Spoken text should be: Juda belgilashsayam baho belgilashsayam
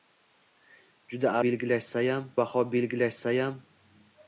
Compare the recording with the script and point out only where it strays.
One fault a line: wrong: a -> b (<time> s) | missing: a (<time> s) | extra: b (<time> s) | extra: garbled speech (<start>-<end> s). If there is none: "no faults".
no faults